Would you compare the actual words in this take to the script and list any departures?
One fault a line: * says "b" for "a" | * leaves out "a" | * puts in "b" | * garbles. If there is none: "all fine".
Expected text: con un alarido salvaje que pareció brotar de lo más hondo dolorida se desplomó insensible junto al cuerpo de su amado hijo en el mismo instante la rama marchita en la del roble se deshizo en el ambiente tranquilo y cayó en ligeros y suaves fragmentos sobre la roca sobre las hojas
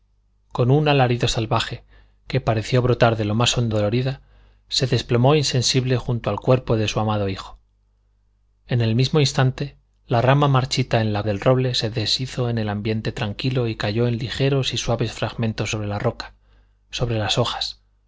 all fine